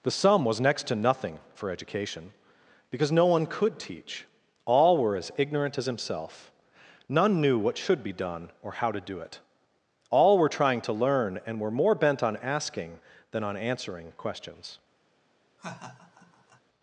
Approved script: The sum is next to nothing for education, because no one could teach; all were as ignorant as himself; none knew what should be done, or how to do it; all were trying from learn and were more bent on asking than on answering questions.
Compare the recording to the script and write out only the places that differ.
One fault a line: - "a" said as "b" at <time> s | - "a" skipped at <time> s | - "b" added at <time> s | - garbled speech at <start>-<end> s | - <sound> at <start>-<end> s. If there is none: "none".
- "is" said as "was" at 0.5 s
- "from" said as "to" at 10.8 s
- laugh at 15.6-16.6 s